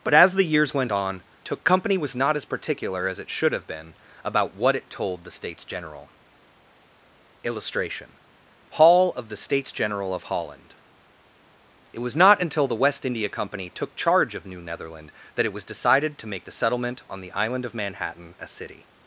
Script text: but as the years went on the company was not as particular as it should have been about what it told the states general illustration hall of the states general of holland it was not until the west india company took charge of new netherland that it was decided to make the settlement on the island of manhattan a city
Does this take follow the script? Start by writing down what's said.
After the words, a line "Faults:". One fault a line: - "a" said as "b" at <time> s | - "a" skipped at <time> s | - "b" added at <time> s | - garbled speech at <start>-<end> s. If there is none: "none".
but as the years went on took company was not as particular as it should have been about what it told the states general illustration hall of the states general of holland it was not until the west india company took charge of new netherland that it was decided to make the settlement on the island of manhattan a city
Faults:
- "the" said as "took" at 1.4 s